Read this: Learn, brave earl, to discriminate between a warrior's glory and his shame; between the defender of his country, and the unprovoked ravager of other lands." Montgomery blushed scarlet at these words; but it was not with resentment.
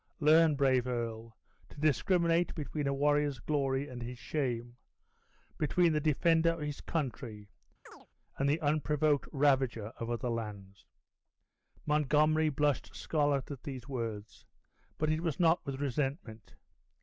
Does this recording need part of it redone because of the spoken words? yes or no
no